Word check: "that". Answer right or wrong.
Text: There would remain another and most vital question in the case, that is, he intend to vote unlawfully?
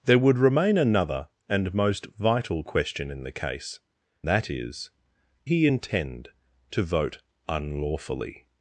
right